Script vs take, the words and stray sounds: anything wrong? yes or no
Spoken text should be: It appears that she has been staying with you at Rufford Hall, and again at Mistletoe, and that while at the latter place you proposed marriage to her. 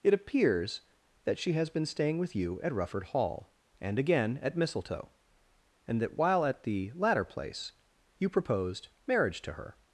no